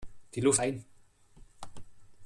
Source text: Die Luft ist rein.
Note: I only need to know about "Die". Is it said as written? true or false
true